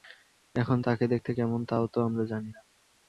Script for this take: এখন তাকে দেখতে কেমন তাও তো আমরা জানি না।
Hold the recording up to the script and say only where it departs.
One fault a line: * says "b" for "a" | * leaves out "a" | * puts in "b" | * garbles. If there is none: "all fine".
all fine